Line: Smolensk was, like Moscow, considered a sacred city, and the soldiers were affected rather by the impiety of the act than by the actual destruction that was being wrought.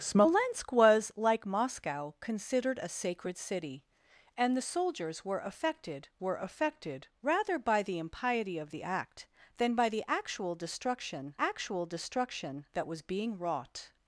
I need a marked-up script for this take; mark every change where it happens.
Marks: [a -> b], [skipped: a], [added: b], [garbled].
Smolensk was, like Moscow, considered a sacred city, and the soldiers were affected [added: were affected] rather by the impiety of the act than by the actual destruction [added: actual destruction] that was being wrought.